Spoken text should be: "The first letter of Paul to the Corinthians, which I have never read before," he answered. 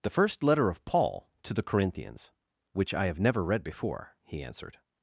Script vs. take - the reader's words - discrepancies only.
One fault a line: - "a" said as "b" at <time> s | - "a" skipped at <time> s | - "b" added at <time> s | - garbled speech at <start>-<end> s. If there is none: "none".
none